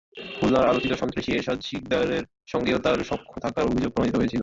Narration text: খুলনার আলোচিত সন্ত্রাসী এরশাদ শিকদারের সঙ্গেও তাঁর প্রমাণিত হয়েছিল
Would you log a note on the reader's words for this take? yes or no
yes